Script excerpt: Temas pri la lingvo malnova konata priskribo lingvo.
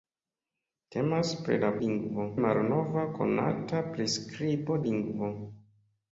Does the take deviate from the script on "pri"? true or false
false